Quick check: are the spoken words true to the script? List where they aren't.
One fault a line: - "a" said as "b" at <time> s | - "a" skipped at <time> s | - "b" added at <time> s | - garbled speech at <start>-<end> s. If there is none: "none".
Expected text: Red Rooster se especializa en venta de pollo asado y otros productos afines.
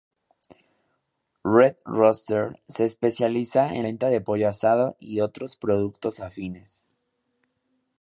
none